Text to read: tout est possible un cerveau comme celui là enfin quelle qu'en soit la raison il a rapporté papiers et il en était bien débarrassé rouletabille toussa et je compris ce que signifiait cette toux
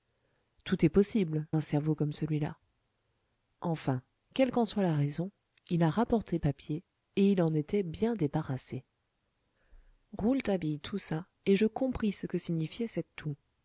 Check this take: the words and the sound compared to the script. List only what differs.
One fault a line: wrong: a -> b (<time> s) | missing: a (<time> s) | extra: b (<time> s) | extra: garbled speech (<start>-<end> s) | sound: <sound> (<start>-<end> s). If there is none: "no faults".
no faults